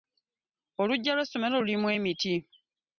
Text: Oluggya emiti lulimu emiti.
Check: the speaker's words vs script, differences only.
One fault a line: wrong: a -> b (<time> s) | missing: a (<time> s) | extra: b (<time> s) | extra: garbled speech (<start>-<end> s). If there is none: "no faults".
wrong: emiti -> lw'essomero (1.1 s)